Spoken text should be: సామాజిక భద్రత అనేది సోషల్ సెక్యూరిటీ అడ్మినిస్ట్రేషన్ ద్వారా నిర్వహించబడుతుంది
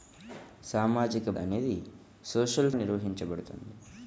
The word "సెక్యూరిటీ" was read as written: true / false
false